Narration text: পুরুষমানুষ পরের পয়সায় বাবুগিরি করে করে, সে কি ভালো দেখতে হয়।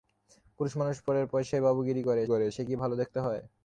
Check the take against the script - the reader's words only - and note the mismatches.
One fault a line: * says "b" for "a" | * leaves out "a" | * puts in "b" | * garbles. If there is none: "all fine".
all fine